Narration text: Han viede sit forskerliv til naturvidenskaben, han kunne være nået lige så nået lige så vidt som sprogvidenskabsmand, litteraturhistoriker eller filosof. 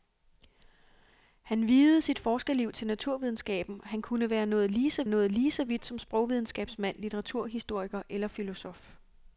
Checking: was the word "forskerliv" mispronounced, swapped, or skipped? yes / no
no